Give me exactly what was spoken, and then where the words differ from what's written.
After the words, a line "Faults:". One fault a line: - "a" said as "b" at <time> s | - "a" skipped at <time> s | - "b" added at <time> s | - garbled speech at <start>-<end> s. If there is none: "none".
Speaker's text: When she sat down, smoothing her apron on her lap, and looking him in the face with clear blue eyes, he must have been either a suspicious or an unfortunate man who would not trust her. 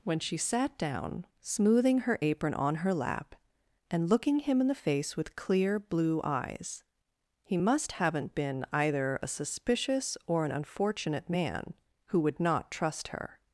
When she sat down, smoothing her apron on her lap, and looking him in the face with clear blue eyes, he must haven't been either a suspicious or an unfortunate man who would not trust her.
Faults:
- "have" said as "haven't" at 7.9 s